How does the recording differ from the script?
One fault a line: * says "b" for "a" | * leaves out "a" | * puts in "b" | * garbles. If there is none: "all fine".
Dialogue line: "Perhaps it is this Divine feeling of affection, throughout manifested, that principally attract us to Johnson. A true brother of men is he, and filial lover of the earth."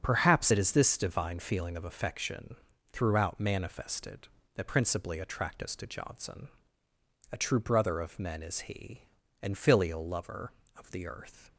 all fine